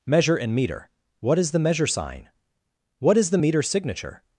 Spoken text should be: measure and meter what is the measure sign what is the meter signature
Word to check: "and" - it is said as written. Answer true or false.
true